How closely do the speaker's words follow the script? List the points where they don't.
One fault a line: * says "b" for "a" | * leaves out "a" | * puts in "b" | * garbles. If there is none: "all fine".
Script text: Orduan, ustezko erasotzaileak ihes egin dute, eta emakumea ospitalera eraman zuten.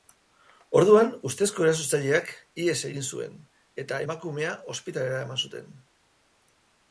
* says "zuen" for "dute"